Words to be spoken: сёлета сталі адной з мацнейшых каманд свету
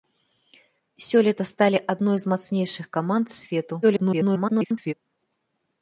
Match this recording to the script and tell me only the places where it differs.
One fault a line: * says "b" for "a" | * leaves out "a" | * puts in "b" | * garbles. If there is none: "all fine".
* garbles